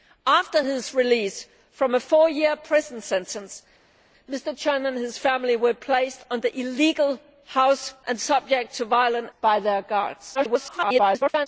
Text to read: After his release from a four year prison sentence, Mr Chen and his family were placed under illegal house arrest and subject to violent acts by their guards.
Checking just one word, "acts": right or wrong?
wrong